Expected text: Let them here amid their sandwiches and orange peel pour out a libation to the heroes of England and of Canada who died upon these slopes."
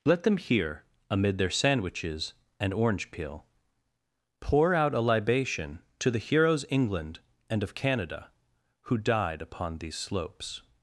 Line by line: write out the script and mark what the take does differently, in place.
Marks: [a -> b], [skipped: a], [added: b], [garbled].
Let them here amid their sandwiches and orange peel pour out a libation to the heroes [skipped: of] England and of Canada who died upon these slopes."